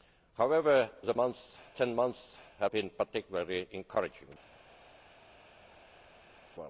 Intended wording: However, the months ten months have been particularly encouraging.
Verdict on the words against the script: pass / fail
pass